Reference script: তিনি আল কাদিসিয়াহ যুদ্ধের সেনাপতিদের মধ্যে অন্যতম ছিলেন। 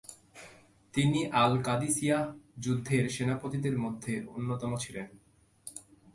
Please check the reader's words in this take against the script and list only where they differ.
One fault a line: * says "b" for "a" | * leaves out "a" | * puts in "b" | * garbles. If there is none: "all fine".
all fine